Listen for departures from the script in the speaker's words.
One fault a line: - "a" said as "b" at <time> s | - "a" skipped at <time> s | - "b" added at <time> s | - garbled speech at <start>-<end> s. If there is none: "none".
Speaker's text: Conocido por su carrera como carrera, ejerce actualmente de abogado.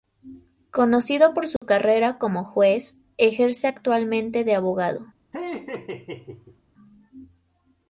- "carrera" said as "juez" at 2.4 s